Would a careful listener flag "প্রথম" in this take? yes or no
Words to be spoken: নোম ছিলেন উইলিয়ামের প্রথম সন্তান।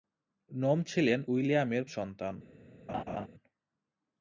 yes